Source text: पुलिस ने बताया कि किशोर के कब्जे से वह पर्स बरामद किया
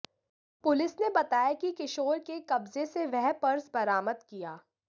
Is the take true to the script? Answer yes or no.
yes